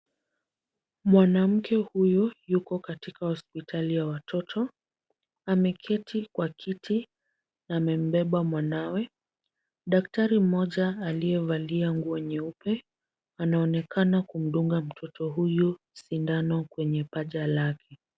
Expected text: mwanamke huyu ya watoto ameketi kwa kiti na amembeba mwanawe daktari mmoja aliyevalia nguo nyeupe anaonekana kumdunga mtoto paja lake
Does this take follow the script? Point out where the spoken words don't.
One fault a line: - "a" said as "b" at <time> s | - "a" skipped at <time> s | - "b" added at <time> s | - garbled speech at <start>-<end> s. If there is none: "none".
- "yuko katika hospitali" added at 2.5 s
- "huyu sindano kwenye" added at 15.3 s